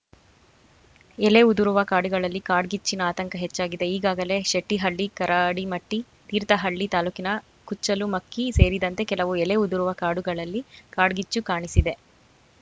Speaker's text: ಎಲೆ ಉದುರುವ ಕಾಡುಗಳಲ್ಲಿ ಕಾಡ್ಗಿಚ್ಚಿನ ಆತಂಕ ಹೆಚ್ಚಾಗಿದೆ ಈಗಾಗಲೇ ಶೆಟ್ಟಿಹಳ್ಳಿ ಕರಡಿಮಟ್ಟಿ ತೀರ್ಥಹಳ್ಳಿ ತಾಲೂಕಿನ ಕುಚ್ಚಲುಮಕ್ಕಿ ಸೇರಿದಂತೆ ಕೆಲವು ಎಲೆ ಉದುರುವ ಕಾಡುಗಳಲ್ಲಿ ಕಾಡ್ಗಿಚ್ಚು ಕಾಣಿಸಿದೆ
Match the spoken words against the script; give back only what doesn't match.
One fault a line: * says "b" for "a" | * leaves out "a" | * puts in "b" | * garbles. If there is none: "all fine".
all fine